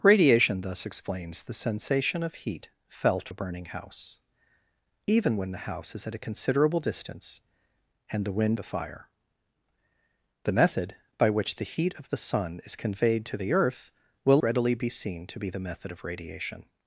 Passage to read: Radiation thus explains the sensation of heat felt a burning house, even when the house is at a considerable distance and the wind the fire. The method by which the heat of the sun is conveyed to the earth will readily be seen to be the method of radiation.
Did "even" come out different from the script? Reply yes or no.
no